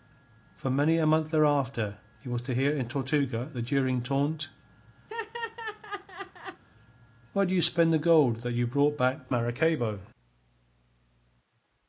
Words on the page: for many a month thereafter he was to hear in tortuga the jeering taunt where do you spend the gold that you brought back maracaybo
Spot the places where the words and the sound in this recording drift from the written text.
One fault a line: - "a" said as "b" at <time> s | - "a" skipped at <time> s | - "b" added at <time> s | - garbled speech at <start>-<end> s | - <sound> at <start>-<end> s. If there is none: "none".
- laugh at 5.1-6.6 s